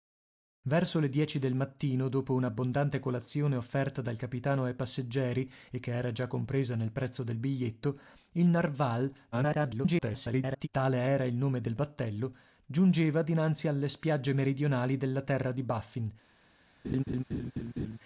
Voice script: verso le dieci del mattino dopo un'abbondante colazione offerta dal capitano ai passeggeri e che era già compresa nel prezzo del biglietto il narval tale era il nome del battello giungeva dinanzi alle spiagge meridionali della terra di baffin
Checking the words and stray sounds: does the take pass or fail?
fail